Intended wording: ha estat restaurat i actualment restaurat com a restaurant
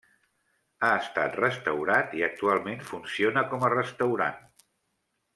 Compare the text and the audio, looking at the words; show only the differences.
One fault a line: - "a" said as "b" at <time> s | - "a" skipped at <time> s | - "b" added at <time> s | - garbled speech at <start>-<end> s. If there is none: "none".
- "restaurat" said as "funciona" at 2.9 s